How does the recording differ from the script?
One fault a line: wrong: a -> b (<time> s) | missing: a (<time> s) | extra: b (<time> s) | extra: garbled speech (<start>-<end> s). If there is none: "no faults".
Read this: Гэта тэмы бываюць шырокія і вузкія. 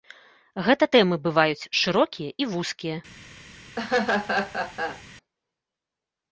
no faults